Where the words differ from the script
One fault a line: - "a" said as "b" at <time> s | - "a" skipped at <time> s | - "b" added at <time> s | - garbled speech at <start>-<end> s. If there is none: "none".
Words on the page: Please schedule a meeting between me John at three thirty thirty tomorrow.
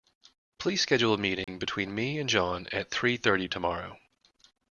- "and" added at 2.2 s
- "thirty" skipped at 3.5 s